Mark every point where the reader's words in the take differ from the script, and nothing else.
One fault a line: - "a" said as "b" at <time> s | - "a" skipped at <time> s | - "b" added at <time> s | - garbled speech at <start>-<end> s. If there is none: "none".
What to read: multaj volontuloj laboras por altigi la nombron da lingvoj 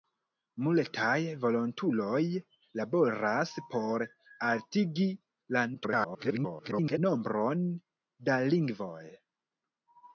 - garbled speech at 5.7-7.0 s